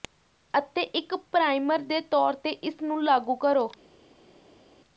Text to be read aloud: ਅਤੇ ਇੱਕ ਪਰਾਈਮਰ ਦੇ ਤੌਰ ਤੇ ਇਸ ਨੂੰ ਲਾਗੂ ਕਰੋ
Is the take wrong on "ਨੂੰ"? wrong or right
right